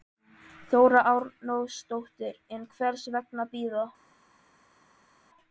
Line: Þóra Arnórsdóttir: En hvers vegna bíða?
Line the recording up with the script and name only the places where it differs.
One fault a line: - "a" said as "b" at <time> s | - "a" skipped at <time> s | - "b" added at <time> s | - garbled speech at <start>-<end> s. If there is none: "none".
none